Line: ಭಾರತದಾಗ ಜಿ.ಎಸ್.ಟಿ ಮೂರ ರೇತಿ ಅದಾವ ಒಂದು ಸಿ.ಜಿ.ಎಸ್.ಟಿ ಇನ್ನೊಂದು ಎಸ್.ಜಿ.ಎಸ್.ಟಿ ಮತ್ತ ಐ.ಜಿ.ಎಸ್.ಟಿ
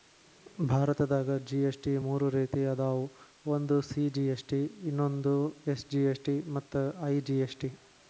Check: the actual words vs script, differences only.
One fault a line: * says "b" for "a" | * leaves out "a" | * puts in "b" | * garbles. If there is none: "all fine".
all fine